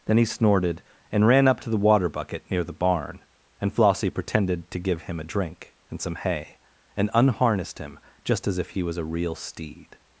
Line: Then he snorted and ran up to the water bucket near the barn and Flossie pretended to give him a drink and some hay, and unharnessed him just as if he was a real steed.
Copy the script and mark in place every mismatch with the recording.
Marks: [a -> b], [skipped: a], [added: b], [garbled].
Then he snorted and ran up to the water bucket near the barn and Flossie pretended to give him a drink and some hay, and unharnessed him just as if he was a real steed.